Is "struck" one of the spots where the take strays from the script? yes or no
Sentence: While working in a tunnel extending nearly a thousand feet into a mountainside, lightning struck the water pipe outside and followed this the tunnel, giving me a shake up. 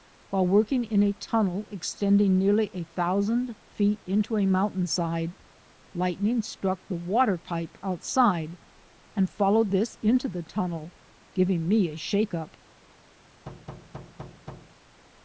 no